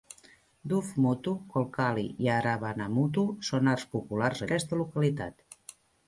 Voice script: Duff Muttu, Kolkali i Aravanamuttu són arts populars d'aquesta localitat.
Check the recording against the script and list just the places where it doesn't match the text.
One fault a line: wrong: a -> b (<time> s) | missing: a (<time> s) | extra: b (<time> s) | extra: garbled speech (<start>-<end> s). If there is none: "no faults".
no faults